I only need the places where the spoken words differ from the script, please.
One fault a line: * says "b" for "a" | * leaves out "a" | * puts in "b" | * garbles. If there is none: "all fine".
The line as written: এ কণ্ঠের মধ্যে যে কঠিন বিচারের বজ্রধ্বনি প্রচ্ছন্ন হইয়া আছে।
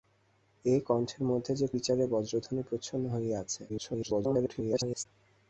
* leaves out "কঠিন"
* garbles